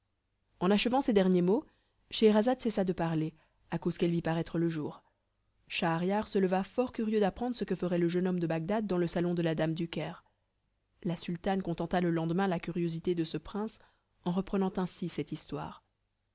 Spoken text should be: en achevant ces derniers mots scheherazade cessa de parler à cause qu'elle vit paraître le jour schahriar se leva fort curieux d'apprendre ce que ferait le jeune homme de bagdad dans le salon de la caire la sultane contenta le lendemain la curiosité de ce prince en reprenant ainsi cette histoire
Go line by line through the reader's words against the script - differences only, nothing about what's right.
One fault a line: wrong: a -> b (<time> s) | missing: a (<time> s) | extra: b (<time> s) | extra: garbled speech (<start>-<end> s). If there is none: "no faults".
extra: dame du (9.6 s)